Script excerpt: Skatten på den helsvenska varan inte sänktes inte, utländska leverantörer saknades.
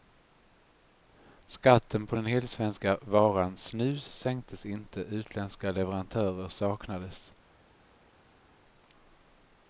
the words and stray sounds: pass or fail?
fail